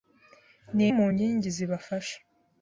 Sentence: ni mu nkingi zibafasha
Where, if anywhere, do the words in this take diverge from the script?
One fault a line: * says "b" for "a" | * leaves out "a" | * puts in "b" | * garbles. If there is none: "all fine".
all fine